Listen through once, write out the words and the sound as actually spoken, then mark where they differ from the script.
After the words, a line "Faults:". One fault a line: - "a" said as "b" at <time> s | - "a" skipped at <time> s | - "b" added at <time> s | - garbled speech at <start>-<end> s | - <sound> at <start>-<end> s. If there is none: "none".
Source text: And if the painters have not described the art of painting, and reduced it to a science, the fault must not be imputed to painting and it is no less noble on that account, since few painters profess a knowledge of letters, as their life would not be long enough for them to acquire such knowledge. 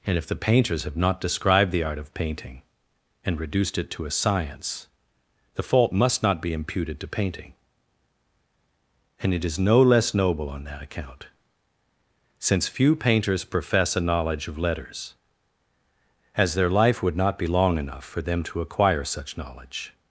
And if the painters have not described the art of painting, and reduced it to a science, the fault must not be imputed to painting and it is no less noble on that account, since few painters profess a knowledge of letters, as their life would not be long enough for them to acquire such knowledge.
Faults:
none